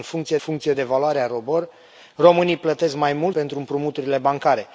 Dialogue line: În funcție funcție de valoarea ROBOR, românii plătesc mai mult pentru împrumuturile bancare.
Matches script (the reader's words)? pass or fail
pass